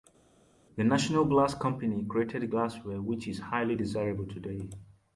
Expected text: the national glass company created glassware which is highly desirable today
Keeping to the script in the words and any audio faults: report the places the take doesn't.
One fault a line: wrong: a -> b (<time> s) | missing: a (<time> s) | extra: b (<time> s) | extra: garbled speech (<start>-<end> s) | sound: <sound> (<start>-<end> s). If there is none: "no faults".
no faults